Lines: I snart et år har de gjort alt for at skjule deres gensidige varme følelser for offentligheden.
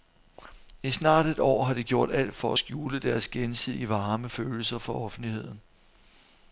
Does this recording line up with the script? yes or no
yes